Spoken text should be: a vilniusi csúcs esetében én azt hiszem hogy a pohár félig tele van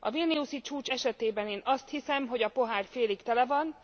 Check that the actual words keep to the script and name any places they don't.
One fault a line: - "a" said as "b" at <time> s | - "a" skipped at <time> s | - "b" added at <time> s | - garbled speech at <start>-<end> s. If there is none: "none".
none